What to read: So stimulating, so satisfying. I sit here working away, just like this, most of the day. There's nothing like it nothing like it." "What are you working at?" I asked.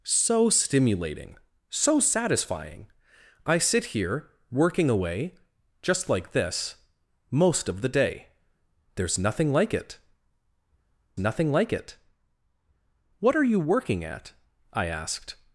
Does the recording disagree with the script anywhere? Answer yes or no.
no